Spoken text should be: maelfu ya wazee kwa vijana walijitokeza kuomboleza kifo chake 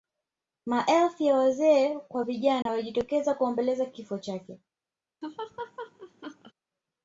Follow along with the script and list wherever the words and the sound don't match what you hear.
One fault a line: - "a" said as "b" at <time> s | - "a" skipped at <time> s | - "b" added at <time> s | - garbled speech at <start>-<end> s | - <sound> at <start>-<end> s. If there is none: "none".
- dropout at 2.6-2.7 s
- laugh at 5.2-6.5 s